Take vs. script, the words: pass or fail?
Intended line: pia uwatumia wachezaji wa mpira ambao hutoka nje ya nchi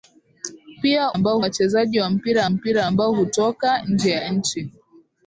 fail